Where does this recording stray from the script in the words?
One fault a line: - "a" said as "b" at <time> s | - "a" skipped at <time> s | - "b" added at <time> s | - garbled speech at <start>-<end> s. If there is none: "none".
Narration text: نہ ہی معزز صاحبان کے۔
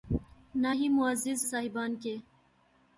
none